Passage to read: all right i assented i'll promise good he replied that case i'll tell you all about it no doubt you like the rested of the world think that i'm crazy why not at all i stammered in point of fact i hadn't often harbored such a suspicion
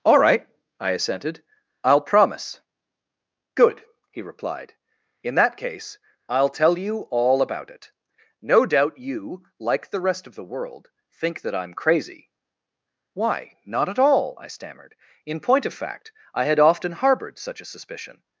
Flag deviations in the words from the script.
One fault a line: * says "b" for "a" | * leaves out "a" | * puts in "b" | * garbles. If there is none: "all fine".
* puts in "in"
* says "rest" for "rested"
* says "had" for "hadn't"